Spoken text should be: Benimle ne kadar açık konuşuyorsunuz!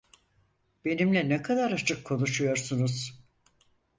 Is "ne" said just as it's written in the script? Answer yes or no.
yes